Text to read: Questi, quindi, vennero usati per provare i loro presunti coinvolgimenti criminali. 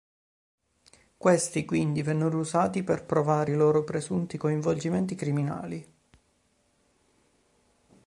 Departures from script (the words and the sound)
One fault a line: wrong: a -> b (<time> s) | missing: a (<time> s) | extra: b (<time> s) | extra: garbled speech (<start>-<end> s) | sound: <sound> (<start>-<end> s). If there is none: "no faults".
no faults